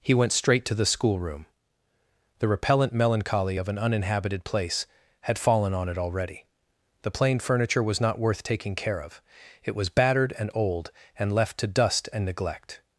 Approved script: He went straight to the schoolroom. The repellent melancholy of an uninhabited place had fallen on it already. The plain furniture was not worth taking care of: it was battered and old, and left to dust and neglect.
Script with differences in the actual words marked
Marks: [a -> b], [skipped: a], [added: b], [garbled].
He went straight to the schoolroom. The repellent melancholy of an uninhabited place had fallen on it already. The plain furniture was not worth taking care of: it was battered and old, and left to dust and neglect.